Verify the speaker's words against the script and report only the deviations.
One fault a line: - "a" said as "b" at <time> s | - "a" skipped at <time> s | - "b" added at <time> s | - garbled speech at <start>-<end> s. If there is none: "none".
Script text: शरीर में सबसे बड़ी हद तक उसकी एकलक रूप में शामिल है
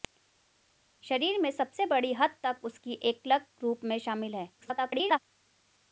- garbled speech at 4.6-5.2 s